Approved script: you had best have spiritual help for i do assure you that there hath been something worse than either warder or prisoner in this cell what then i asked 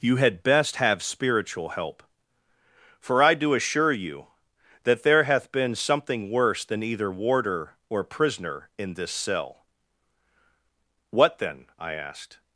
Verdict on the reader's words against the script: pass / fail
pass